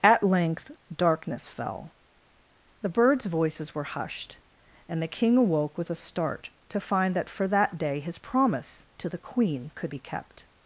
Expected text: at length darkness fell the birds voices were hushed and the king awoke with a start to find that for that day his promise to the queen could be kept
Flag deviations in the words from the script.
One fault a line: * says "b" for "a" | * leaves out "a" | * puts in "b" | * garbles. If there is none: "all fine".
all fine